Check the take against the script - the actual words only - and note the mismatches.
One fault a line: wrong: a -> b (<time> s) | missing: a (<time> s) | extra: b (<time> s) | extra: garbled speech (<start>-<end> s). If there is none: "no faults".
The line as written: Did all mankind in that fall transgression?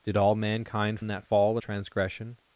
no faults